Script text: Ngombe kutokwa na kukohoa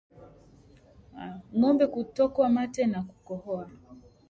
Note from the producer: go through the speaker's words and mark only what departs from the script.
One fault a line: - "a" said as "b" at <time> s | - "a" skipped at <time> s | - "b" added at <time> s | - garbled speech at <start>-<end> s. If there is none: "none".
- "mate" added at 2.5 s